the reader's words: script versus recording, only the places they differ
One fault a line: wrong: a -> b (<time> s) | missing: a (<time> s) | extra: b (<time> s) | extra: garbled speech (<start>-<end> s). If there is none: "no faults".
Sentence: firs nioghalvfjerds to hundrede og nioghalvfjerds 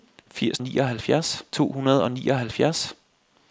no faults